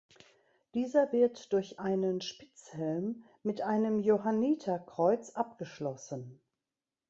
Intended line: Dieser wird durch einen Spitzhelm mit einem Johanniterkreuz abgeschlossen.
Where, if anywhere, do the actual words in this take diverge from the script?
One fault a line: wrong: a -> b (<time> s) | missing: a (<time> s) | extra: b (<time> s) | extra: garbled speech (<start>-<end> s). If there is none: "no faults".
no faults